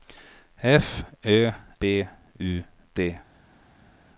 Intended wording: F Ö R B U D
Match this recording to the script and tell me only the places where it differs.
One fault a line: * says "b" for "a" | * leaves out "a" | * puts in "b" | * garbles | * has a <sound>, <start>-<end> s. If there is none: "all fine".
* leaves out "R"